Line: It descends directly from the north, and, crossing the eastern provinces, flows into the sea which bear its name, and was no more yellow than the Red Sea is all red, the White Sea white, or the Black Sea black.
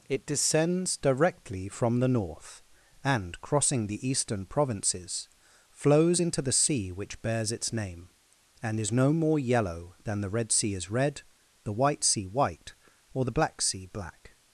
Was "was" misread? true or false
true